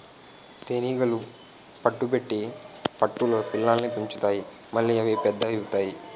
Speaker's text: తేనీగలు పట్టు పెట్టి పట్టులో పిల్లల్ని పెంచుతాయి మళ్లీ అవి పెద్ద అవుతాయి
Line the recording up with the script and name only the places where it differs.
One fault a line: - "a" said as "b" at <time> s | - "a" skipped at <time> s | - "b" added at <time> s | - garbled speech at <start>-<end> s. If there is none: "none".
none